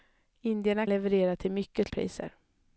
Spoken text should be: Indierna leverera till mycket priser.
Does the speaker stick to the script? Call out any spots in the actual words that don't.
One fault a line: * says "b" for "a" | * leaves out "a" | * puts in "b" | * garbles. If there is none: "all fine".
all fine